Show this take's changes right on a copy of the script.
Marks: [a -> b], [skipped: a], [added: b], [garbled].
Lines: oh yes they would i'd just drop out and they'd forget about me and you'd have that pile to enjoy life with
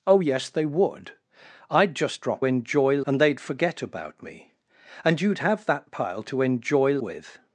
oh yes they would i'd just drop [out -> enjoy] and they'd forget about me and you'd have that pile to enjoy [skipped: life] with